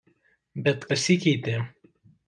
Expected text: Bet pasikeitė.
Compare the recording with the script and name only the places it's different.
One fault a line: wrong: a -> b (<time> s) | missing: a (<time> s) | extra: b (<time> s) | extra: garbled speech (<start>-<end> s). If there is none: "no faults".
no faults